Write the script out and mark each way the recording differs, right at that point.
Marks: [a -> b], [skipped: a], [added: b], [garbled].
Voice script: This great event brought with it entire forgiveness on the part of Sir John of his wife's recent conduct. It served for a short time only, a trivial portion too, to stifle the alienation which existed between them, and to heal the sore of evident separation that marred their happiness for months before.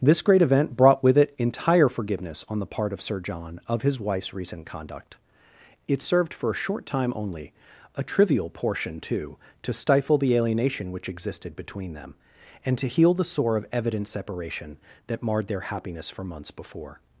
This great event brought with it entire forgiveness on the part of Sir John of his wife's recent conduct. It served for a short time only, a trivial portion too, to stifle the alienation which existed between them, and to heal the sore of evident separation that marred their happiness for months before.